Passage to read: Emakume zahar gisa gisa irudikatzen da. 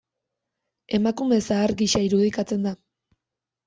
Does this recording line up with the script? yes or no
no